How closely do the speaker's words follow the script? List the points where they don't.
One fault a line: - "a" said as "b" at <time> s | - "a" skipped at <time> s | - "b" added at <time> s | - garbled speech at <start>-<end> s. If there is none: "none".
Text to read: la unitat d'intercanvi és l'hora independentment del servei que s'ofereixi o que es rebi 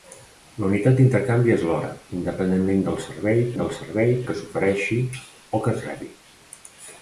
- "del servei" added at 3.6 s